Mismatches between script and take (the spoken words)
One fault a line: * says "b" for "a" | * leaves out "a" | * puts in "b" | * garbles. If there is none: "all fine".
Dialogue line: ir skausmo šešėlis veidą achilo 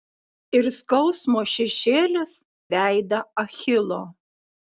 all fine